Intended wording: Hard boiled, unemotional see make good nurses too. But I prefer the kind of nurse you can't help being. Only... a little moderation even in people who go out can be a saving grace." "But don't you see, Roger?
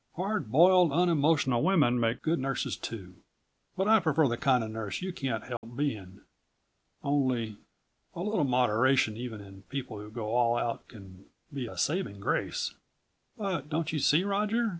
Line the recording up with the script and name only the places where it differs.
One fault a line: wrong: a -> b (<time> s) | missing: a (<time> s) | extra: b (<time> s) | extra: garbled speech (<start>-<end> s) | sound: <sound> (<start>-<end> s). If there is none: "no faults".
wrong: see -> women (1.6 s)
sound: dropout (5.6-5.6 s)
extra: all (10.3 s)